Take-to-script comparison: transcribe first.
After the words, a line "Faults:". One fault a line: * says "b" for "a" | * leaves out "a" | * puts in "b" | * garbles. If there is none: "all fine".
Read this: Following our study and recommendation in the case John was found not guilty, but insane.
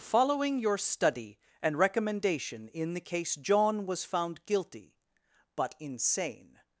Following your study and recommendation in the case John was found guilty, but insane.
Faults:
* says "your" for "our"
* leaves out "not"